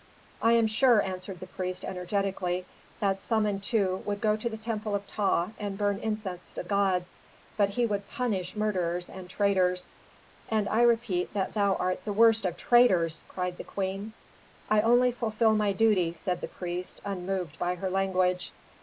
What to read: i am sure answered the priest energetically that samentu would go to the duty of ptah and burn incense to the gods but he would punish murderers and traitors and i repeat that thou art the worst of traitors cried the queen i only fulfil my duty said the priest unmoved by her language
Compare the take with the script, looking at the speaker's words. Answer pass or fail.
fail